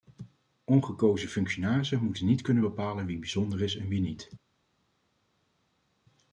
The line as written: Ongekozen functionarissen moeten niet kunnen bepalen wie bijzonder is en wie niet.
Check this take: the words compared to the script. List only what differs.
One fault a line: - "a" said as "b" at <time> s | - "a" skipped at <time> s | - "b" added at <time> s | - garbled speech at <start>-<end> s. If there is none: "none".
none